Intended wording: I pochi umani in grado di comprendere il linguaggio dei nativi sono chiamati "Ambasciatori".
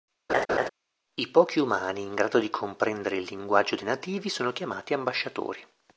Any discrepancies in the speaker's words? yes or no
no